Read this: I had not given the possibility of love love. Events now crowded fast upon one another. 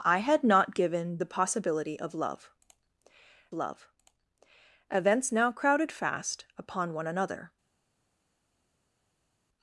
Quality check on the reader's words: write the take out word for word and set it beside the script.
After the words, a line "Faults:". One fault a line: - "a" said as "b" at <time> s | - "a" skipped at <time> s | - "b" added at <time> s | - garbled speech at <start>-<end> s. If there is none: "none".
I had not given the possibility of love love. Events now crowded fast upon one another.
Faults:
none